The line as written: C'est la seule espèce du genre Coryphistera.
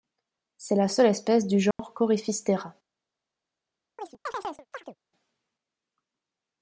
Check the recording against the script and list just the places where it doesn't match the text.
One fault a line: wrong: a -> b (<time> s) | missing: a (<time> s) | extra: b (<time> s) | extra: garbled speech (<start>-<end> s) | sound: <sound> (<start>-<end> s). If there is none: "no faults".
sound: dropout (1.7-1.8 s)
sound: chirp (4.0-5.0 s)